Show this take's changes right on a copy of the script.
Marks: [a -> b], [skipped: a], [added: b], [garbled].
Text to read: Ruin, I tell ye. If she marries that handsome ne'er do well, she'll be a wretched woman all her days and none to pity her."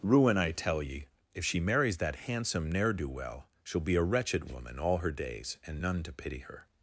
Ruin, I tell ye. If she marries that handsome ne'er do well, she'll be a wretched woman all her days and none to pity her."